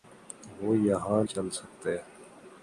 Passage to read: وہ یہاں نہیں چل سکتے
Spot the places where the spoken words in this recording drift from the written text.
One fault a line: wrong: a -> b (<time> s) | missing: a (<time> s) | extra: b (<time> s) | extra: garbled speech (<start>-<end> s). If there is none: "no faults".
missing: نہیں (1.2 s)